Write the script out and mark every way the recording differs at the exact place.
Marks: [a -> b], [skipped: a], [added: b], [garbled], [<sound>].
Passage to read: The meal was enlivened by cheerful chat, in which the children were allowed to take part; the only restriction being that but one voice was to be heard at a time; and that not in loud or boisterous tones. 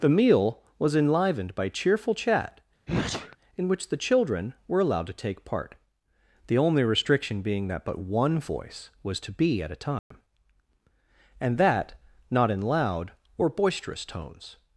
The meal was enlivened by cheerful chat, [sneeze] in which the children were allowed to take part; the only restriction being that but one voice was to be [skipped: heard] at a time; [dropout] and that not in loud or boisterous tones.